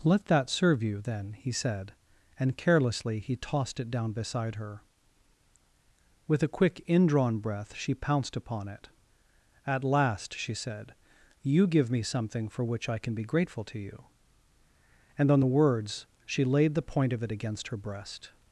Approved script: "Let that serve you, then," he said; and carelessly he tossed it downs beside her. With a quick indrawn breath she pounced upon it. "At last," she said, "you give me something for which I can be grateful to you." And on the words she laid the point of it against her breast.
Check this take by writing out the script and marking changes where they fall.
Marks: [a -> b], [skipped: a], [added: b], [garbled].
"Let that serve you, then," he said; and carelessly he tossed it [downs -> down] beside her. With a quick indrawn breath she pounced upon it. "At last," she said, "you give me something for which I can be grateful to you." And on the words she laid the point of it against her breast.